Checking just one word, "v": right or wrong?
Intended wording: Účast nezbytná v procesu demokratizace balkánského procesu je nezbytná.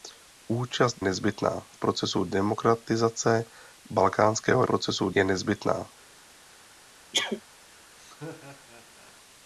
right